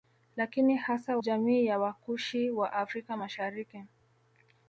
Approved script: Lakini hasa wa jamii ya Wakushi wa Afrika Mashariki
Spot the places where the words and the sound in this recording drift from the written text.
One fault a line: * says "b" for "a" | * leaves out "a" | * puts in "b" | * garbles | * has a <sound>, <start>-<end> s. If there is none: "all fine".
* leaves out "wa"